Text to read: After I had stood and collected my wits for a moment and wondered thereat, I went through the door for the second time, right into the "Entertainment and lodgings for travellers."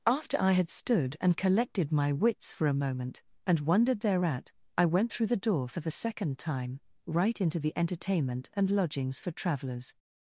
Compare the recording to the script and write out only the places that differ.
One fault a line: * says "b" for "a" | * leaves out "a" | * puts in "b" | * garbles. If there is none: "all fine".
all fine